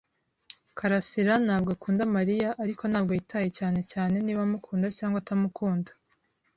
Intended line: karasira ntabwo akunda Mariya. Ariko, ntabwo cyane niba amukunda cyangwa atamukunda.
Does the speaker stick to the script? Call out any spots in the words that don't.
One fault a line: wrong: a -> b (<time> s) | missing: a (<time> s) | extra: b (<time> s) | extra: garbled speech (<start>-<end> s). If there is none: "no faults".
extra: yitaye cyane (3.2 s)